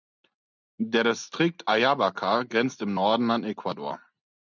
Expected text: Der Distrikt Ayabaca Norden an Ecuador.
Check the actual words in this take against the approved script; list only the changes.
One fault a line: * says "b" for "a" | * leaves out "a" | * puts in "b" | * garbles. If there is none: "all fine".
* puts in "grenzt im"